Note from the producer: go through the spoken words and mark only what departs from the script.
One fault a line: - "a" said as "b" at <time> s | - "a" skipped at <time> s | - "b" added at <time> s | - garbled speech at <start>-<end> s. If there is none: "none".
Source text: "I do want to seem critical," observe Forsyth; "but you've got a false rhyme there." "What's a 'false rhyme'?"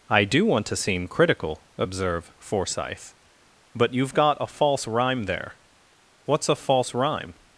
none